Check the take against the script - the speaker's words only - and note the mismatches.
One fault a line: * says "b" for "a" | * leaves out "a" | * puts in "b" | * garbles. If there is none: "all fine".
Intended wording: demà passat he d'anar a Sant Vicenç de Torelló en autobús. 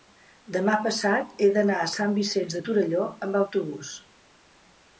* says "amb" for "en"